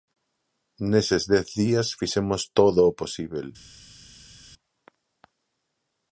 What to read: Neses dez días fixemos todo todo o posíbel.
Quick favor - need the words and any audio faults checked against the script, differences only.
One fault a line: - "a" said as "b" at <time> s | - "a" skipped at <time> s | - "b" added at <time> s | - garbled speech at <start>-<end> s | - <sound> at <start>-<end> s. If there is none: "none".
- "todo" skipped at 2.8 s